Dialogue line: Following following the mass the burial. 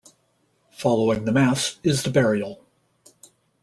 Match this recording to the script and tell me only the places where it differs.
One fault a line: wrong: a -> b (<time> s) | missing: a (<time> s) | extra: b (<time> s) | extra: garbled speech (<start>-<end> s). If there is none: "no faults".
missing: following (1.2 s)
extra: is (1.8 s)